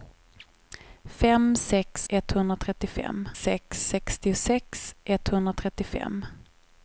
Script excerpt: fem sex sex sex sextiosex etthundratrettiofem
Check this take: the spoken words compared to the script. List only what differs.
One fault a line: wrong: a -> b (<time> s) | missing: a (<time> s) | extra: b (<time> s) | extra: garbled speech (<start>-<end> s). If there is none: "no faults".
wrong: sex -> etthundratrettiofem (2.1 s)